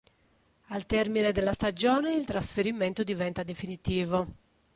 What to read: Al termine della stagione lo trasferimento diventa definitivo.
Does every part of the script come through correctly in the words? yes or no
no